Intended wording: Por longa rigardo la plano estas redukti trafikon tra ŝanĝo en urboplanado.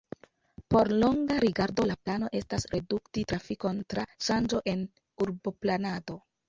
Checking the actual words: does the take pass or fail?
pass